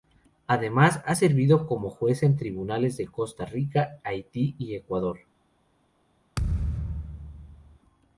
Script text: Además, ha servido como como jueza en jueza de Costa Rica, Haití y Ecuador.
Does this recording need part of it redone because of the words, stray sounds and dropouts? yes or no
yes